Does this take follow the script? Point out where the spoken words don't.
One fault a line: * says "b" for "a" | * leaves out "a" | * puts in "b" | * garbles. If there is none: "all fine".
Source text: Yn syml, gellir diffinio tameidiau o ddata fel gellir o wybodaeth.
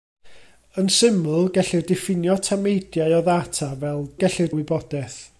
all fine